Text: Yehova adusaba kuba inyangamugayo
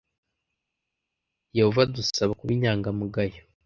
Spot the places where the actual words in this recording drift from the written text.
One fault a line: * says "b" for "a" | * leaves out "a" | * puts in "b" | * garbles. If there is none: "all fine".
all fine